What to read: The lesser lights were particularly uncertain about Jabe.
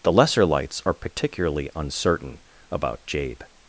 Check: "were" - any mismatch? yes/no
yes